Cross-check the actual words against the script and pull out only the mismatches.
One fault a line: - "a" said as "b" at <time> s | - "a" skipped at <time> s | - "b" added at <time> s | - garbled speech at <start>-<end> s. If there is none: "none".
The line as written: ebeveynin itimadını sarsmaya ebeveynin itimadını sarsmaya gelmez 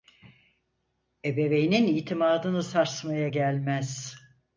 - "ebeveynin itimadını sarsmaya" skipped at 3.3 s